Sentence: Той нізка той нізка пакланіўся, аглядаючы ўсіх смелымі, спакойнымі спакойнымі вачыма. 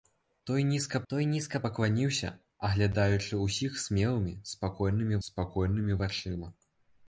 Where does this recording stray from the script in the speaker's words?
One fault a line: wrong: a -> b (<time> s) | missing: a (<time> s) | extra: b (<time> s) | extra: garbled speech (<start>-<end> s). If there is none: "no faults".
no faults